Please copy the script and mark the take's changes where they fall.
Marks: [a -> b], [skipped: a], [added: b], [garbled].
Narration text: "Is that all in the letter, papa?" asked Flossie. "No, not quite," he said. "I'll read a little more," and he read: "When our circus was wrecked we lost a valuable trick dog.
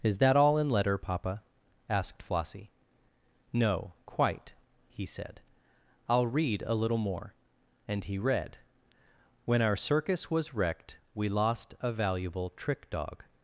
"Is that all in [skipped: the] letter, papa?" asked Flossie. "No, [skipped: not] quite," he said. "I'll read a little more," and he read: "When our circus was wrecked we lost a valuable trick dog.